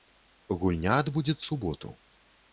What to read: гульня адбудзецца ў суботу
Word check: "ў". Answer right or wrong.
wrong